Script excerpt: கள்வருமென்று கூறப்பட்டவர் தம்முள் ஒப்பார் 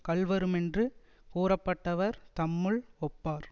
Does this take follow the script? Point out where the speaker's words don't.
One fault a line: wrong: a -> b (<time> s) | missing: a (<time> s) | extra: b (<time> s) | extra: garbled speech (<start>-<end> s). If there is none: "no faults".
no faults